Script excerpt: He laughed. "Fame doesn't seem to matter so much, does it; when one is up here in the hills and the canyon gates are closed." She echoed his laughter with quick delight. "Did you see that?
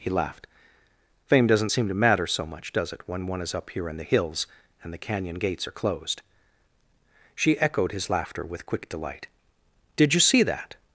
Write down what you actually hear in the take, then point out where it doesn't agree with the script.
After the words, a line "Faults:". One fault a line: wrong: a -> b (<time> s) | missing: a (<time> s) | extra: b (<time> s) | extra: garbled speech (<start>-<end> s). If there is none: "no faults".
He laughed. "Fame doesn't seem to matter so much, does it; when one is up here in the hills and the canyon gates are closed." She echoed his laughter with quick delight. "Did you see that?
Faults:
no faults